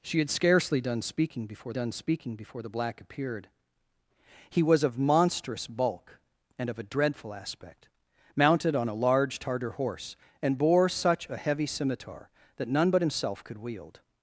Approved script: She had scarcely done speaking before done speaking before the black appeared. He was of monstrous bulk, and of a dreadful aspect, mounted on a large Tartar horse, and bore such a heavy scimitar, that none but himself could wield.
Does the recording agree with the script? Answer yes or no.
yes